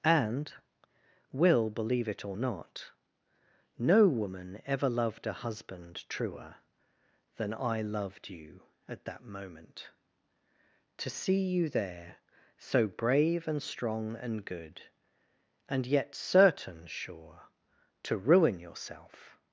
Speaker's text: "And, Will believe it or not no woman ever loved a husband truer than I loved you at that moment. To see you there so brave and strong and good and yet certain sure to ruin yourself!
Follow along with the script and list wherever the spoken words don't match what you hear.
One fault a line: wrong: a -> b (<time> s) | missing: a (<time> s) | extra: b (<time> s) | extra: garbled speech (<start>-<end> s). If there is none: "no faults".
no faults